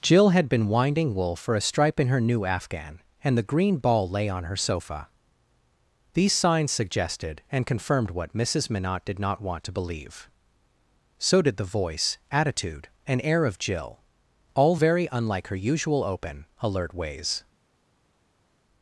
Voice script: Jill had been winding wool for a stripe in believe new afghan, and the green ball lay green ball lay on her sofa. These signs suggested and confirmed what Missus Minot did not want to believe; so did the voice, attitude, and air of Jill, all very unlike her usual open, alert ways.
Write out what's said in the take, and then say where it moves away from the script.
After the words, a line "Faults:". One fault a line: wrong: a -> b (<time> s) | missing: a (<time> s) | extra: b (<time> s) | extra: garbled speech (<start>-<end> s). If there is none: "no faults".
Jill had been winding wool for a stripe in her new afghan, and the green ball lay on her sofa. These signs suggested and confirmed what Missus Minot did not want to believe; so did the voice, attitude, and air of Jill, all very unlike her usual open, alert ways.
Faults:
wrong: believe -> her (2.1 s)
missing: green ball lay (4.3 s)